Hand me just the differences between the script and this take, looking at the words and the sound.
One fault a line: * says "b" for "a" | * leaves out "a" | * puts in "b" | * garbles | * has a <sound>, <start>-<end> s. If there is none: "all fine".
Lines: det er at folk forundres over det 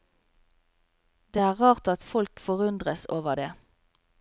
* puts in "rart"